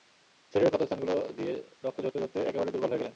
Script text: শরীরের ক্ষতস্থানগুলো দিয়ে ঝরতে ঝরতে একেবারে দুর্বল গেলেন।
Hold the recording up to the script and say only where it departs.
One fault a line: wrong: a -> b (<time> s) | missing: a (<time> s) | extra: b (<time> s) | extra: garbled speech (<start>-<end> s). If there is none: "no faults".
extra: রক্ত (1.8 s)
extra: হয়ে (2.9 s)